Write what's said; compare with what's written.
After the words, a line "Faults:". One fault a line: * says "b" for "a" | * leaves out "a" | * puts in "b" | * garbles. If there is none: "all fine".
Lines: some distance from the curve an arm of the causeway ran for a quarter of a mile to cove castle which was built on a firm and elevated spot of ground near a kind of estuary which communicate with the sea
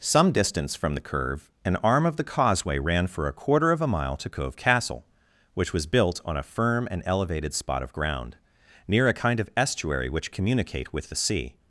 some distance from the curve an arm of the causeway ran for a quarter of a mile to cove castle which was built on a firm and elevated spot of ground near a kind of estuary which communicate with the sea
Faults:
all fine